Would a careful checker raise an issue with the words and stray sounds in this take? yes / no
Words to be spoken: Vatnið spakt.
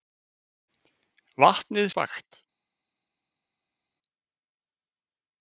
no